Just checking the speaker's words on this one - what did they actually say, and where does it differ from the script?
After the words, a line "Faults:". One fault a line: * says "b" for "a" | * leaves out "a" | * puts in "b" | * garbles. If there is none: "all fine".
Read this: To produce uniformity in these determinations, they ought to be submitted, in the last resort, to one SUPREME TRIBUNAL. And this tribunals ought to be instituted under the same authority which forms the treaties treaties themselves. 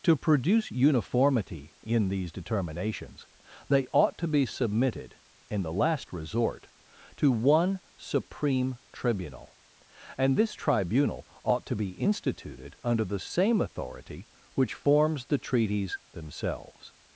To produce uniformity in these determinations, they ought to be submitted, in the last resort, to one SUPREME TRIBUNAL. And this tribunal ought to be instituted under the same authority which forms the treaties themselves.
Faults:
* says "tribunal" for "tribunals"
* leaves out "treaties"